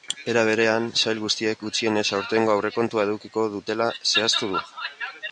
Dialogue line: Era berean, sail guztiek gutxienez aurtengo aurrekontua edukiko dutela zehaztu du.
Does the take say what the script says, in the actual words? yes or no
yes